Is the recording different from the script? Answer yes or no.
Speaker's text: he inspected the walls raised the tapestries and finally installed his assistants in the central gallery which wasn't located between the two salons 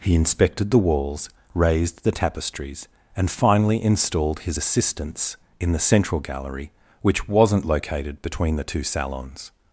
no